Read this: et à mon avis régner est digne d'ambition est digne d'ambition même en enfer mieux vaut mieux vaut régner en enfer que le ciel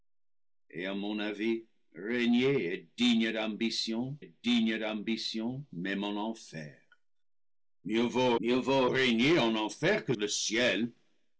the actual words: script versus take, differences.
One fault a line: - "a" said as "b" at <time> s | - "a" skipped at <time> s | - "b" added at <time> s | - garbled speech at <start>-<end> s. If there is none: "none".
none